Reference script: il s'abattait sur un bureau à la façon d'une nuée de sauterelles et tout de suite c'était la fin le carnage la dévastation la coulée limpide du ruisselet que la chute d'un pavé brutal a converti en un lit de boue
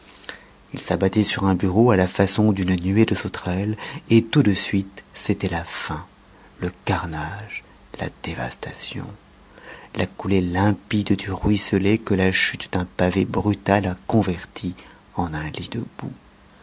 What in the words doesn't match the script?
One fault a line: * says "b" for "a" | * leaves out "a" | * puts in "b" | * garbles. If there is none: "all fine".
all fine